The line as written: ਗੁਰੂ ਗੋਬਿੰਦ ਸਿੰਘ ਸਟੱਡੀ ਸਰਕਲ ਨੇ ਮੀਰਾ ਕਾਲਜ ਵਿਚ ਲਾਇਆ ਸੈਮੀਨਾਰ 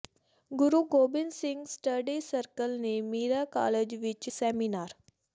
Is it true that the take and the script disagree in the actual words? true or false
true